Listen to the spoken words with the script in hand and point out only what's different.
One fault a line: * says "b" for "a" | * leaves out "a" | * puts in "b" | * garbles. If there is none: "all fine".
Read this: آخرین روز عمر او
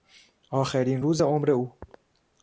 all fine